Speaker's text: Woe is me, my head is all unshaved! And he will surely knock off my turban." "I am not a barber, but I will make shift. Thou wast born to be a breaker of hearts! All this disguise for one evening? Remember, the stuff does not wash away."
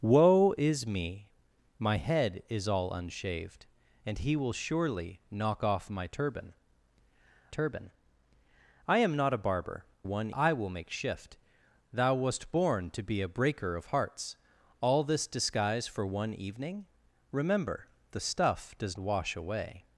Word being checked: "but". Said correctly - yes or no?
no